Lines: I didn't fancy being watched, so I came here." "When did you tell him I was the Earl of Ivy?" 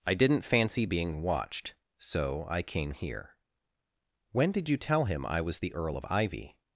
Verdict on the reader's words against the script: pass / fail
pass